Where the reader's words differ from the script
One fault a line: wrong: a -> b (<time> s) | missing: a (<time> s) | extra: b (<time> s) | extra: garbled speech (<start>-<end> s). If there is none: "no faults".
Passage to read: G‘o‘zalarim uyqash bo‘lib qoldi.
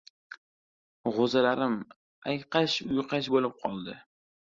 extra: ayqash (2.3 s)